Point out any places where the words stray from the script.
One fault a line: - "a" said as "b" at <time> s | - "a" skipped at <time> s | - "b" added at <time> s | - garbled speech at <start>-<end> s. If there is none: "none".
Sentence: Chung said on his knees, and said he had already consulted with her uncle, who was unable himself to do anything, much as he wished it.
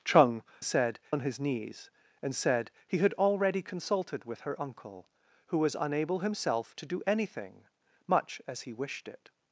none